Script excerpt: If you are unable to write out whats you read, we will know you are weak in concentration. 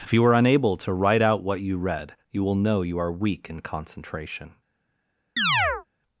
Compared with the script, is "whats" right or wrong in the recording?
wrong